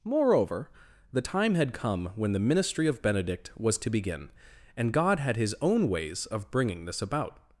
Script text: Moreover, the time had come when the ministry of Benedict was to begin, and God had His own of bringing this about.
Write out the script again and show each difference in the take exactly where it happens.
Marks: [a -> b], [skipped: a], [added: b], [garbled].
Moreover, the time had come when the ministry of Benedict was to begin, and God had His own [added: ways] of bringing this about.